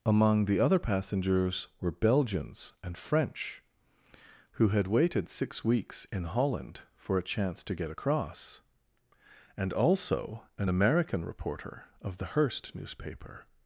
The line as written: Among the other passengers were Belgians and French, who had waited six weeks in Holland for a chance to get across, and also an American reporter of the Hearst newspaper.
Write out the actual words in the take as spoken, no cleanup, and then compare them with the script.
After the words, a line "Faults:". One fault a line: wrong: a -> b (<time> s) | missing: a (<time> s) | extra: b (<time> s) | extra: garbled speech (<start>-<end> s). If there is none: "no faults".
Among the other passengers were Belgians and French, who had waited six weeks in Holland for a chance to get across, and also an American reporter of the Hearst newspaper.
Faults:
no faults